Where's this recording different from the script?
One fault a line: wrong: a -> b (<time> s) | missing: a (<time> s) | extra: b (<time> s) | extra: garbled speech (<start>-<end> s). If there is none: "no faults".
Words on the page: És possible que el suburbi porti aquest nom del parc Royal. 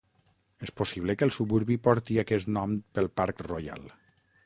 wrong: del -> pel (3.0 s)